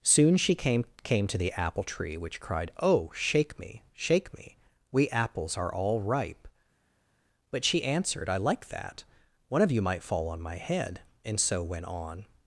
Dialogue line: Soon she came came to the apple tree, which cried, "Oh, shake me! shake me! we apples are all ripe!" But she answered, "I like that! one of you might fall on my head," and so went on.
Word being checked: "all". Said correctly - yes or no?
yes